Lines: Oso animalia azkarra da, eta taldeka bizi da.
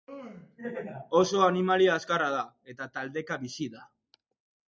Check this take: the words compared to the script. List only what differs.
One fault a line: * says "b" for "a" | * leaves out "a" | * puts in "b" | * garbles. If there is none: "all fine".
all fine